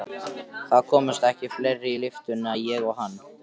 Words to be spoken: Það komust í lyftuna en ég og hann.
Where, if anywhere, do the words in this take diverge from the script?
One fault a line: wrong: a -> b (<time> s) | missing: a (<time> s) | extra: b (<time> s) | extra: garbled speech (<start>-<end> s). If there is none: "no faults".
extra: ekki fleiri (1.3 s)